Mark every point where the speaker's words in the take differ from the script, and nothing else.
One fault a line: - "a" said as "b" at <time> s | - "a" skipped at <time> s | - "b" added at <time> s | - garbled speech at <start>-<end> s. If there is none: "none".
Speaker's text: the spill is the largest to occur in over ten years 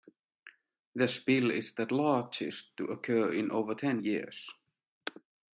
none